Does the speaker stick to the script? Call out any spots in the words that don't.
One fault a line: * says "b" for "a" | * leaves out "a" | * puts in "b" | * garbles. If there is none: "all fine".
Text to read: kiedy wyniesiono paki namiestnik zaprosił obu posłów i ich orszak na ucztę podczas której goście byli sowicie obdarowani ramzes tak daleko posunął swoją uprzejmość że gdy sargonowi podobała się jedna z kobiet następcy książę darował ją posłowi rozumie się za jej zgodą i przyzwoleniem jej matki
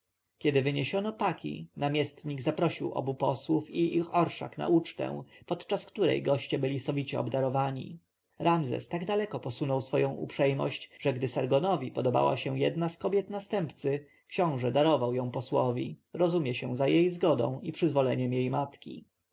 all fine